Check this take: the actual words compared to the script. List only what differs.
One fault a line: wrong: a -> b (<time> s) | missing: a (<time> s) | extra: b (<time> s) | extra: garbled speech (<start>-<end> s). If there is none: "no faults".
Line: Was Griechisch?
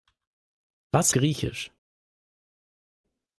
no faults